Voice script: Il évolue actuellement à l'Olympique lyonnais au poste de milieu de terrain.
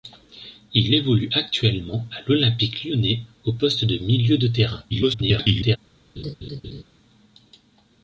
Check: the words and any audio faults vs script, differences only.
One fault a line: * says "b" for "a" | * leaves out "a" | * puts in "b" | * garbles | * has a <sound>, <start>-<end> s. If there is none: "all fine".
* garbles
* has a laugh, 6.2-6.8 s